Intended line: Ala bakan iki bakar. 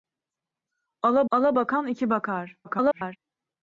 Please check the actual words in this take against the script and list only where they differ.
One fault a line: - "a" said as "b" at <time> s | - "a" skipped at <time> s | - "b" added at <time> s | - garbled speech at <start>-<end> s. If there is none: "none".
- "ala" added at 1.3 s
- garbled speech at 2.6-3.2 s